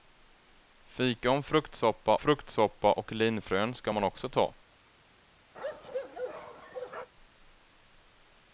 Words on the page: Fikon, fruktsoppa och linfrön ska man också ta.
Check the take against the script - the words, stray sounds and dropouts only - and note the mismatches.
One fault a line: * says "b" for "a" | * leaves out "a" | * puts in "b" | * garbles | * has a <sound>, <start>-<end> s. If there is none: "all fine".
* puts in "fruktsoppa"
* has a bark, 5.5-7.1 s